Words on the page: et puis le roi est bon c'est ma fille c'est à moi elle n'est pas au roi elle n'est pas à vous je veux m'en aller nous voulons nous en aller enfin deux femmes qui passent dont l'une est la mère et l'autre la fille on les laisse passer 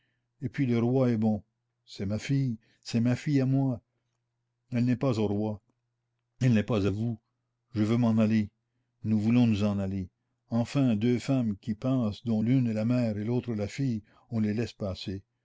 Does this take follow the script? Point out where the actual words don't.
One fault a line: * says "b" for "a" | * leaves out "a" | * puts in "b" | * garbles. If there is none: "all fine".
* puts in "ma fille"